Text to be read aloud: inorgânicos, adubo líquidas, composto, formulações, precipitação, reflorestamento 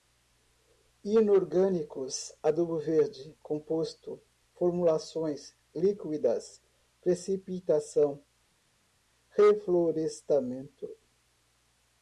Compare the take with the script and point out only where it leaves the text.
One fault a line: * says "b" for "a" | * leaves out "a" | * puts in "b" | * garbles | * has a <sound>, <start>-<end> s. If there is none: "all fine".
* says "verde" for "líquidas"
* puts in "líquidas"